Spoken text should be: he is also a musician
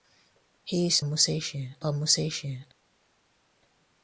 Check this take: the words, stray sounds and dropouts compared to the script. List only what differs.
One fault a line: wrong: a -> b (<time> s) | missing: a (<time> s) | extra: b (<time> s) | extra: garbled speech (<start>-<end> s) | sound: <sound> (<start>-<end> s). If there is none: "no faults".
wrong: also -> musician (1.0 s)